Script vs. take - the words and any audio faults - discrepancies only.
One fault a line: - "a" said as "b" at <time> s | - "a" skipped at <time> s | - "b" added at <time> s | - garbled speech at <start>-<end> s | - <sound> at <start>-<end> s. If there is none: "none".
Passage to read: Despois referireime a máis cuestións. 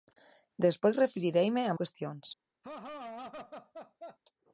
- "máis" skipped at 1.7 s
- laugh at 2.6-4.2 s